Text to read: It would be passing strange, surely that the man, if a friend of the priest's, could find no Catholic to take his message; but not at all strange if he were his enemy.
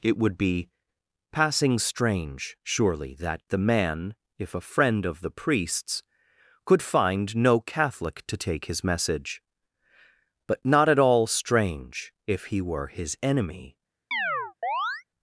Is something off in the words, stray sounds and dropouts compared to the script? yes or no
yes